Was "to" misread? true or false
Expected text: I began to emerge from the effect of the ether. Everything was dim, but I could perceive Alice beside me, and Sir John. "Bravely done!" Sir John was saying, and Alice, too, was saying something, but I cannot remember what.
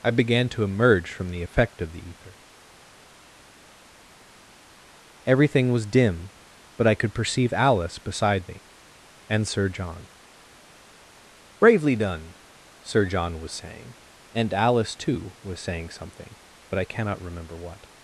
false